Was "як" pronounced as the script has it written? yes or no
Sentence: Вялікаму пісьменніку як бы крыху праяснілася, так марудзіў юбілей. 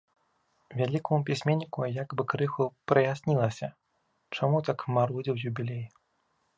yes